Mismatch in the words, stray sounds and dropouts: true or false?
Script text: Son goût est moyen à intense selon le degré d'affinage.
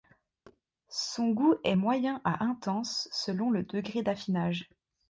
true